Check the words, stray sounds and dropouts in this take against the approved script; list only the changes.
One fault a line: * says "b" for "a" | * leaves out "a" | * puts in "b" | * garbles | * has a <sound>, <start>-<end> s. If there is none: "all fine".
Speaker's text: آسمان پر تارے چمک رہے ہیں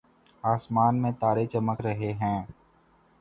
* says "میں" for "پر"